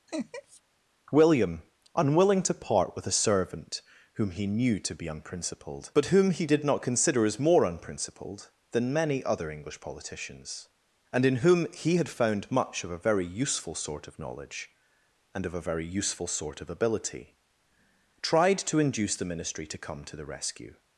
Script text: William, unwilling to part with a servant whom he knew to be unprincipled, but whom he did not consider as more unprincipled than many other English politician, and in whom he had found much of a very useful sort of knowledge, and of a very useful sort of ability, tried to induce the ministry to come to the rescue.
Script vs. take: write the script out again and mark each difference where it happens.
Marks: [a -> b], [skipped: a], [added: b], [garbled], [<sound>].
[laugh] William, unwilling to part with a servant whom he knew to be unprincipled, but whom he did not consider as more unprincipled than many other English [politician, -> politicians] and in whom he had found much of a very useful sort of knowledge, and of a very useful sort of ability, tried to induce the ministry to come to the rescue.